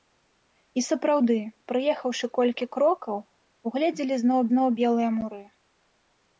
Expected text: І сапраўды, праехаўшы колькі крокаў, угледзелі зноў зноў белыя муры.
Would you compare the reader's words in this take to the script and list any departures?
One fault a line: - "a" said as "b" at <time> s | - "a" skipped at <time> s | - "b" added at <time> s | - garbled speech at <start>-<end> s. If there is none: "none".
none